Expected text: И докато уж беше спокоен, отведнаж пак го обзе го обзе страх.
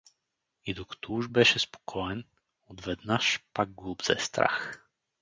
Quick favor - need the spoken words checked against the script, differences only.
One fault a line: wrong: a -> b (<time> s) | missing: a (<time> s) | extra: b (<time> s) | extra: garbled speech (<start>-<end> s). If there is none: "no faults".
missing: го обзе (4.2 s)